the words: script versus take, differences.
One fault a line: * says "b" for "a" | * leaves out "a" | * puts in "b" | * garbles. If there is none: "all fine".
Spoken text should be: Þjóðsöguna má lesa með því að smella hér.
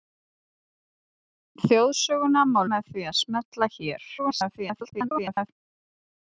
* leaves out "lesa"
* garbles